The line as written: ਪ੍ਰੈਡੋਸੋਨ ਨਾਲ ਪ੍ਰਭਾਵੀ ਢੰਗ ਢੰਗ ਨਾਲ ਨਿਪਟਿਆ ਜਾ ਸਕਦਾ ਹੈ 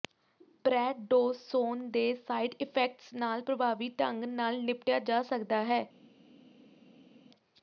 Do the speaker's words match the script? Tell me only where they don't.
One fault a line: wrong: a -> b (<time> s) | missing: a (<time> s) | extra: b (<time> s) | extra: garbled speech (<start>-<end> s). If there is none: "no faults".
extra: ਦੇ ਸਾਈਡ ਇਫੈਕਟਸ (1.9 s)
missing: ਢੰਗ (4.2 s)